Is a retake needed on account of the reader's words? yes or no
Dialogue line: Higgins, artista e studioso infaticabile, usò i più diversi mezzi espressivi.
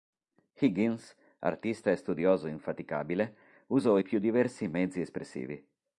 no